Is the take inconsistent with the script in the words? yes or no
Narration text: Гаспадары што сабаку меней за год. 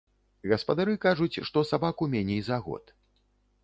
yes